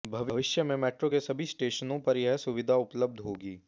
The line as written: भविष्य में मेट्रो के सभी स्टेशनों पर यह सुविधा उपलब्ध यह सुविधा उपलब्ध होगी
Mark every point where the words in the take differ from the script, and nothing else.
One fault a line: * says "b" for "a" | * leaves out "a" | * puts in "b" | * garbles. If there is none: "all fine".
* leaves out "यह सुविधा उपलब्ध"